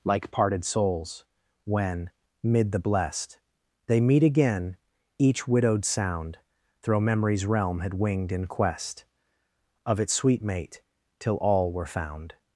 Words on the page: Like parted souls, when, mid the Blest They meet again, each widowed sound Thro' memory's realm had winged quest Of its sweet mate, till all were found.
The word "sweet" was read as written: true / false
true